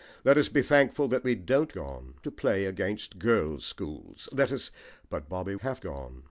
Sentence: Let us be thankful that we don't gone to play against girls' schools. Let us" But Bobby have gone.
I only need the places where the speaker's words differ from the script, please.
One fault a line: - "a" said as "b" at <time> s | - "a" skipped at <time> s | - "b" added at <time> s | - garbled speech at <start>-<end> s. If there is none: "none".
none